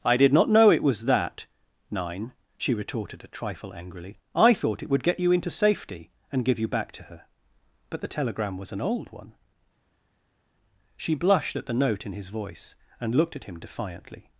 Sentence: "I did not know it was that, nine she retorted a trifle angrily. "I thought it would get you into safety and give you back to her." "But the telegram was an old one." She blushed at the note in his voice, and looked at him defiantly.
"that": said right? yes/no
yes